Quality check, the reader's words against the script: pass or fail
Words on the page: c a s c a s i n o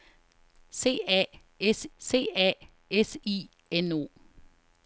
pass